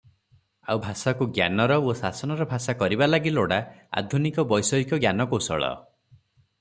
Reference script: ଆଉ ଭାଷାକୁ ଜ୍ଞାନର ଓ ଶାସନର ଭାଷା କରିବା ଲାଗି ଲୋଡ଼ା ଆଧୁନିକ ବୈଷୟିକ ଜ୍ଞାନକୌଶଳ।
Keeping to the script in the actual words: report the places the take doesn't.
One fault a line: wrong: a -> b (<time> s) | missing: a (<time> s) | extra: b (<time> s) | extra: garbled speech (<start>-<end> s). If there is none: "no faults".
no faults